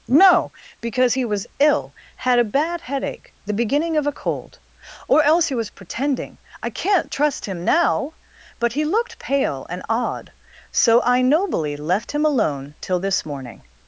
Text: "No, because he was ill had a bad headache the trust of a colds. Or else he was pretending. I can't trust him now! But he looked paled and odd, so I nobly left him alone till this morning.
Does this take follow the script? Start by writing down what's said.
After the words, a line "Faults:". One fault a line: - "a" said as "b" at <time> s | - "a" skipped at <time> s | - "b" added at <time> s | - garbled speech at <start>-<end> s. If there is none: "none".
"No, because he was ill had a bad headache the beginning of a cold. Or else he was pretending. I can't trust him now! But he looked pale and odd, so I nobly left him alone till this morning.
Faults:
- "trust" said as "beginning" at 3.5 s
- "colds" said as "cold" at 4.1 s
- "paled" said as "pale" at 9.2 s